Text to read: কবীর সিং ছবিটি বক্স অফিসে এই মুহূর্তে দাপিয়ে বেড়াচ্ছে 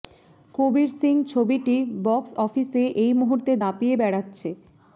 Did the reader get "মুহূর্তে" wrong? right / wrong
right